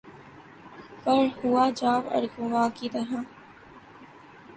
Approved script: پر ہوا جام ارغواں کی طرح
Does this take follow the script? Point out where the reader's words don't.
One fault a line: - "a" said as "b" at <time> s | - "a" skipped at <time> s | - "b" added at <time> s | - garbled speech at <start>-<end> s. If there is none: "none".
none